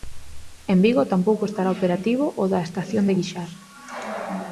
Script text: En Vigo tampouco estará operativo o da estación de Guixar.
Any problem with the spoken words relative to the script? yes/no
no